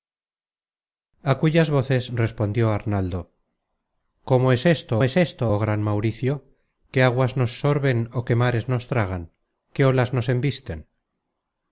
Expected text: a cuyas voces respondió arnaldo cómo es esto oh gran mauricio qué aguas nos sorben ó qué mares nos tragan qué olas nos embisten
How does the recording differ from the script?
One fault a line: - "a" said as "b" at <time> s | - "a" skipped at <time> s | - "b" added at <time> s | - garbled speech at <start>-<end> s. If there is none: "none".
- "es esto" added at 5.0 s